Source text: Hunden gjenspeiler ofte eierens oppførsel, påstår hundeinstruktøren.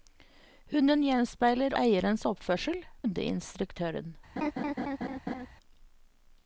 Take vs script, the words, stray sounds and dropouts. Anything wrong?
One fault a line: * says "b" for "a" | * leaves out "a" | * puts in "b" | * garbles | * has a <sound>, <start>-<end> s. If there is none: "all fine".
* leaves out "ofte"
* leaves out "påstår"
* has a laugh, 4.4-5.5 s